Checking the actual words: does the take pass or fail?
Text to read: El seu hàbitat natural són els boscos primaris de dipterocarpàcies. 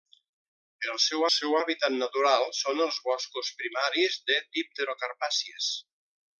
fail